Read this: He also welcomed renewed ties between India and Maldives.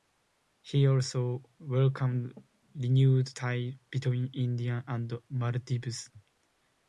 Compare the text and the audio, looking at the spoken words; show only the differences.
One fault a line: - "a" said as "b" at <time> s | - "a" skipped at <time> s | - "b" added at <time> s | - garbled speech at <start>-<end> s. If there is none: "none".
none